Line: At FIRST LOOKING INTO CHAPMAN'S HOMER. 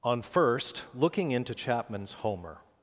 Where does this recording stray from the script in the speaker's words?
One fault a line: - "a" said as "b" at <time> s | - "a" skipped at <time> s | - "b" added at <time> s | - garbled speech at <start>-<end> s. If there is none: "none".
- "At" said as "ON" at 0.0 s